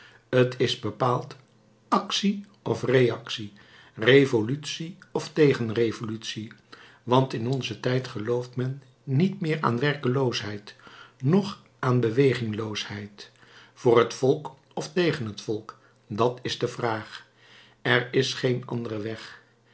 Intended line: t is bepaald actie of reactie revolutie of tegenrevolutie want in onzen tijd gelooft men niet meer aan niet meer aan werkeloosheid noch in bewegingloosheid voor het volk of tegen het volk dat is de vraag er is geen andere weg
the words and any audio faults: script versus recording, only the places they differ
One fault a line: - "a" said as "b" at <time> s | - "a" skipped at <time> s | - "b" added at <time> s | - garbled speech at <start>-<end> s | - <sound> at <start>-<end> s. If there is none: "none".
- "niet meer aan" skipped at 9.8 s
- "in" said as "aan" at 11.8 s